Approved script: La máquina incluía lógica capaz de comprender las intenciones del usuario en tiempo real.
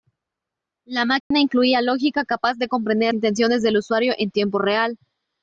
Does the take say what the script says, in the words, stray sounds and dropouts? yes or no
no